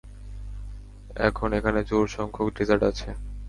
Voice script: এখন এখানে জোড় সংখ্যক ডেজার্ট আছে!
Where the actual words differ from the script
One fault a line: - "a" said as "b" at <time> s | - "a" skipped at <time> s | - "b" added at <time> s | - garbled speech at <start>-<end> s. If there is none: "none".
none